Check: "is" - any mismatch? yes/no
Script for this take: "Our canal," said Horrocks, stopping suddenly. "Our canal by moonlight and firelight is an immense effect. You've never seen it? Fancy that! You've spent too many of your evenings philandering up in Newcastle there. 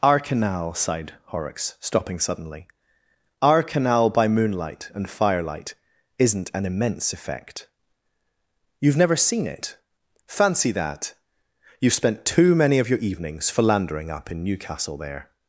yes